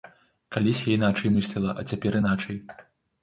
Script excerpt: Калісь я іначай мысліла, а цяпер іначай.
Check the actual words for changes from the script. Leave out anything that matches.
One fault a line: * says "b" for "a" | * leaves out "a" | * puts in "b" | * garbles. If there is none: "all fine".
all fine